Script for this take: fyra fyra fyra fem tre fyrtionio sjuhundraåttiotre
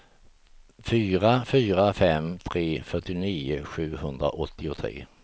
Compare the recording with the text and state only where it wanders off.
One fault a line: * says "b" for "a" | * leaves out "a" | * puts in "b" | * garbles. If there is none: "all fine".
* leaves out "fyra"